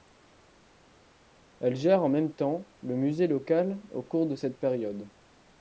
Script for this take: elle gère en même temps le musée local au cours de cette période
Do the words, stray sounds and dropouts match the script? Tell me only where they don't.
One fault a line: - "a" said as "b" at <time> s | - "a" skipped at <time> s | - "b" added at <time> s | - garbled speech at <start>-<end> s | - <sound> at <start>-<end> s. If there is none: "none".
none